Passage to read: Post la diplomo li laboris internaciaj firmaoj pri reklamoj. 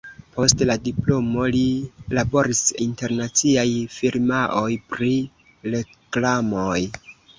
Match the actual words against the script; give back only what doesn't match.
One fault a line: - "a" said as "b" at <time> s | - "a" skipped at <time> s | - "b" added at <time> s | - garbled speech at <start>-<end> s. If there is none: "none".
none